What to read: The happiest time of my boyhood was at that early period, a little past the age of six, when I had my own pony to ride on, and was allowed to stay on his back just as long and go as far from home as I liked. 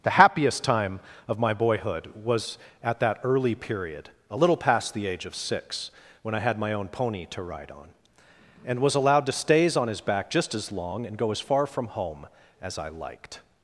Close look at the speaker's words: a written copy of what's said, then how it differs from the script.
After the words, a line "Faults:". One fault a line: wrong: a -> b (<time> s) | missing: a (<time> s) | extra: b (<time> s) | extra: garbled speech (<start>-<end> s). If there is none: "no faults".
The happiest time of my boyhood was at that early period, a little past the age of six, when I had my own pony to ride on, and was allowed to stays on his back just as long and go as far from home as I liked.
Faults:
wrong: stay -> stays (9.3 s)